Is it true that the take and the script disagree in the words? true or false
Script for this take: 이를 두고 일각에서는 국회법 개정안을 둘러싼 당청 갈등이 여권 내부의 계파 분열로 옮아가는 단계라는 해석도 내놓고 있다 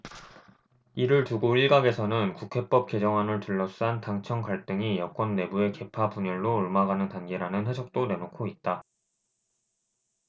false